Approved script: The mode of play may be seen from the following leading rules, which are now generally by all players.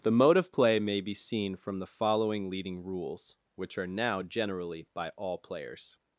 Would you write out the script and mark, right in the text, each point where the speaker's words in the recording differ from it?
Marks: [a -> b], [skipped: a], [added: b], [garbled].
The mode of play may be seen from the following leading rules, which are now generally by all players.